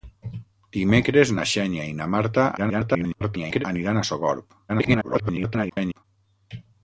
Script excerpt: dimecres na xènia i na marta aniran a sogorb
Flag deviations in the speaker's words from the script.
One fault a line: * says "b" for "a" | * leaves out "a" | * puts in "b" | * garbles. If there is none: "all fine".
* garbles
* garbles